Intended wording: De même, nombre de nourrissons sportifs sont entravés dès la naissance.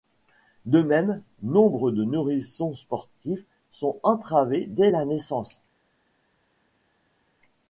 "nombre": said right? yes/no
yes